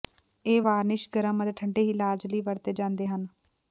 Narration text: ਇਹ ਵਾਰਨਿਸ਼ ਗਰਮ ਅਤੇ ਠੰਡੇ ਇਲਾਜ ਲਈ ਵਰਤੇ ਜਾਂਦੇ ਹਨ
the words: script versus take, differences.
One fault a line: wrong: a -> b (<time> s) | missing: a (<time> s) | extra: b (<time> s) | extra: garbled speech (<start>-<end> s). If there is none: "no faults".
no faults